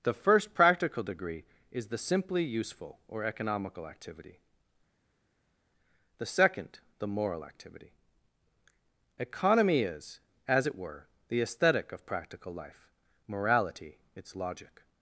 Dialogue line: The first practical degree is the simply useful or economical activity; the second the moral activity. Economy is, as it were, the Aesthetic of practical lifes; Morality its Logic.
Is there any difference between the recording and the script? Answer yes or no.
yes